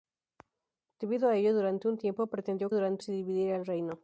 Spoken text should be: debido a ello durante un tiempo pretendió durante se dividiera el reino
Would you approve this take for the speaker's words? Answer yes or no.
yes